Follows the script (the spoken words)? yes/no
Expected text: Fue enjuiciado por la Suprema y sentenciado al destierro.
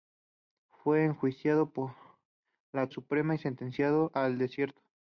yes